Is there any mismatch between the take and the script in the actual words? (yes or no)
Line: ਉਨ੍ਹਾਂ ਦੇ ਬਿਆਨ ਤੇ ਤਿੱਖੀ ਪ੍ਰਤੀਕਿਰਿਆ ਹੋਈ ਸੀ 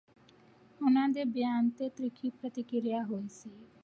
no